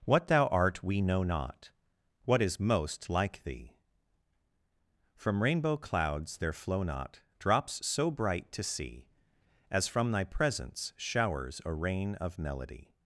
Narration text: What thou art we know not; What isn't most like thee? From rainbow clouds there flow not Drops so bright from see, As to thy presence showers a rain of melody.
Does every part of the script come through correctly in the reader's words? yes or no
no